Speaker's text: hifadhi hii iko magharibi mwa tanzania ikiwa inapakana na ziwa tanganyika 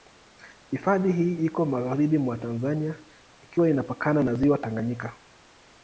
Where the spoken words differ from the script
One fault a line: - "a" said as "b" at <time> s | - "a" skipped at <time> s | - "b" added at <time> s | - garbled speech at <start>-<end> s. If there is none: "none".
none